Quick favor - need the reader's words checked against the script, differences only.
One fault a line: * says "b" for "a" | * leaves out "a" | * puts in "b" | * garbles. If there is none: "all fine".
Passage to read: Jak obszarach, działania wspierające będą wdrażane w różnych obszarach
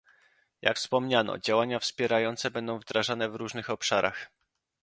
* says "wspomniano" for "obszarach"